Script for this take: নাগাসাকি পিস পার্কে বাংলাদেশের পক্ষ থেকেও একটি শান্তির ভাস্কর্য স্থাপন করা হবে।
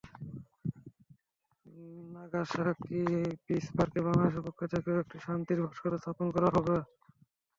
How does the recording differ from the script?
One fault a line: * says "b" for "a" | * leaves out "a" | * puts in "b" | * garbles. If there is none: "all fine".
all fine